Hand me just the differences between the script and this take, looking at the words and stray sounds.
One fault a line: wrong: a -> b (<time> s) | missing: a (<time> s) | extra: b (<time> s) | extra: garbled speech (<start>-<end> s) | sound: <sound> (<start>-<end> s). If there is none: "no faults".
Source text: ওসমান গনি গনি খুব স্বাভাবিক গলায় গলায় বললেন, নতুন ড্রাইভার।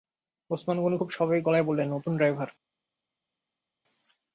missing: গনি (1.0 s)
missing: গলায় (1.7 s)